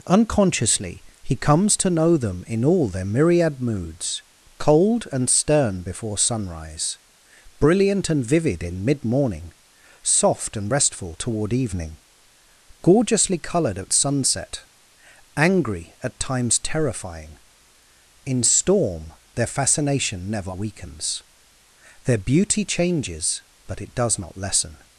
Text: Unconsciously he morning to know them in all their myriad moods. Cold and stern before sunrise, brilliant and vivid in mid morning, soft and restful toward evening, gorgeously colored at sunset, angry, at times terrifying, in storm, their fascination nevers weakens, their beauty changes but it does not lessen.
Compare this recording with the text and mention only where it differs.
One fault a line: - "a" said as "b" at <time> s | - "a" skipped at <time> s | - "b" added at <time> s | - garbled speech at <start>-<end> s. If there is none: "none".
- "morning" said as "comes" at 1.4 s
- "nevers" said as "never" at 20.3 s